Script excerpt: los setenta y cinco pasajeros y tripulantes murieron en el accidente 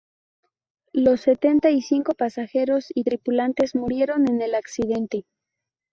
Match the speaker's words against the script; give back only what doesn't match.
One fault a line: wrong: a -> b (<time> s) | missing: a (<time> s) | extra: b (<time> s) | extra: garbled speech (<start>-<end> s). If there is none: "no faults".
no faults